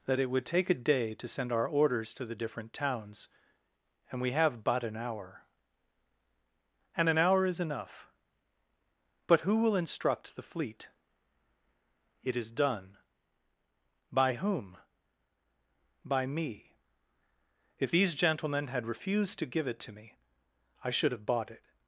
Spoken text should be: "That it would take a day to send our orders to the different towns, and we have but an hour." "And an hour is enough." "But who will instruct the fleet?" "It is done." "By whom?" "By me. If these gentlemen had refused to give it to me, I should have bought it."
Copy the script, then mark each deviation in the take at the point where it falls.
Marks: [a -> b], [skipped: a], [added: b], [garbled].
"That it would take a day to send our orders to the different towns, and we have but an hour." "And an hour is enough." "But who will instruct the fleet?" "It is done." "By whom?" "By me. If these gentlemen had refused to give it to me, I should have bought it."